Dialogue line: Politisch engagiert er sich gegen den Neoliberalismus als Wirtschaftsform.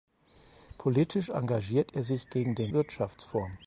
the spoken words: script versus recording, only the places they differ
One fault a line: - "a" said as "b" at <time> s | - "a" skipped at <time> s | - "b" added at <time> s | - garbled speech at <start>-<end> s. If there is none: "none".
- "Neoliberalismus als" skipped at 2.7 s